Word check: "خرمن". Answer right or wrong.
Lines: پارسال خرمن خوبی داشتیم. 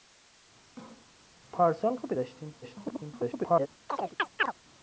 wrong